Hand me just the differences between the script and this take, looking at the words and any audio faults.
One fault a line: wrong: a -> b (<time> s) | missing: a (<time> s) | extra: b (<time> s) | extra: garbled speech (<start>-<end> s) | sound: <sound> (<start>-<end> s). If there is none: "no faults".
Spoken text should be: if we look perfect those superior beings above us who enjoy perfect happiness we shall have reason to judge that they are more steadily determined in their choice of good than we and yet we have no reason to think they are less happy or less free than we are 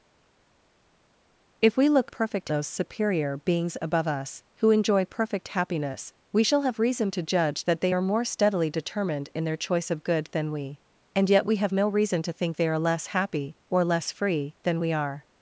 no faults